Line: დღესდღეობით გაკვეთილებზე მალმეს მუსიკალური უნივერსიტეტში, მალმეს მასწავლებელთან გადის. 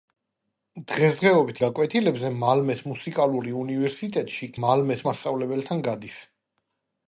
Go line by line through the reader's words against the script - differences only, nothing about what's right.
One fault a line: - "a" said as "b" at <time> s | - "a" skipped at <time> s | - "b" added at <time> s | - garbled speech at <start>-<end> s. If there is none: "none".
none